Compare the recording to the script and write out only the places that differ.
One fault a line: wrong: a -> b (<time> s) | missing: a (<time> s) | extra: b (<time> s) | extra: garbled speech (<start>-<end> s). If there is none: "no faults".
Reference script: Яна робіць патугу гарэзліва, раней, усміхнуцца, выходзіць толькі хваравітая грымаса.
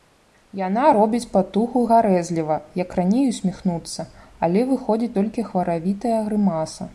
extra: як (2.8 s)
extra: але (4.5 s)